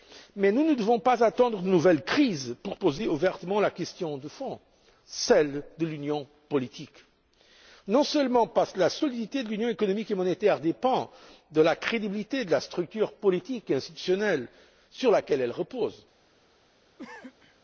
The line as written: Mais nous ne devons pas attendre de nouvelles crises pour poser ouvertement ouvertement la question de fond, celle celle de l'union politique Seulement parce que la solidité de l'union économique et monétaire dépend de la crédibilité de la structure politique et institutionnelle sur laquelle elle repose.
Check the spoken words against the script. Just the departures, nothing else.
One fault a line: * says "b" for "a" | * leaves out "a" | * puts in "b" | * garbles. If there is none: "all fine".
* leaves out "ouvertement"
* leaves out "celle"
* puts in "Non"